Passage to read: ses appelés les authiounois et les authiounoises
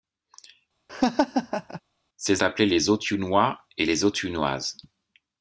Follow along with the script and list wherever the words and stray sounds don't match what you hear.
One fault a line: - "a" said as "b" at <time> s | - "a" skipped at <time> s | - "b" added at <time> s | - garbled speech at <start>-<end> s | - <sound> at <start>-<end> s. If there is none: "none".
- laugh at 0.9-1.8 s